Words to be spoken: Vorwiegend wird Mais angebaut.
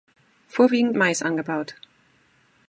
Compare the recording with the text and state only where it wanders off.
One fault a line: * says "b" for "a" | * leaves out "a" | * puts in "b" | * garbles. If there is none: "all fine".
* leaves out "wird"